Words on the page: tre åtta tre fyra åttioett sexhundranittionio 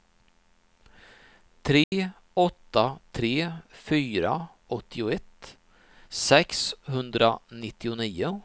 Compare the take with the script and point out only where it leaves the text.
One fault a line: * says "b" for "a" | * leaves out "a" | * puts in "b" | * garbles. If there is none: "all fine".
all fine